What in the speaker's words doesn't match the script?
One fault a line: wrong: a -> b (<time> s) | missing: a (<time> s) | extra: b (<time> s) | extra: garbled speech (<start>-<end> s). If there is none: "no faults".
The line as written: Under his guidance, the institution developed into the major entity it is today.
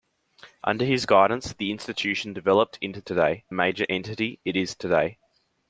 wrong: the -> today (3.0 s)